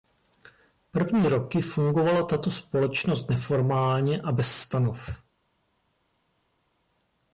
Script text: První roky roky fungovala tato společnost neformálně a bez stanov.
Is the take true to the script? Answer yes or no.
no